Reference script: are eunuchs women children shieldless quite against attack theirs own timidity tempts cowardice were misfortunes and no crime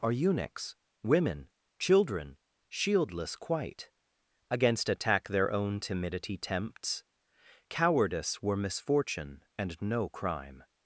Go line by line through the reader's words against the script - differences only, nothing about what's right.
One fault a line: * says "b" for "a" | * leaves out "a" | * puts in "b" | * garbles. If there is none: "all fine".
* says "their" for "theirs"
* says "misfortune" for "misfortunes"